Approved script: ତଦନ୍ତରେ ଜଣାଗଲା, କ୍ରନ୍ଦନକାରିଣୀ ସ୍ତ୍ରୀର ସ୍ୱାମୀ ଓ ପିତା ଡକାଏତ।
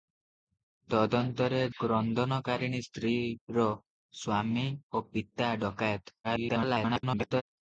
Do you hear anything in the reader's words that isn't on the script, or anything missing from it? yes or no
yes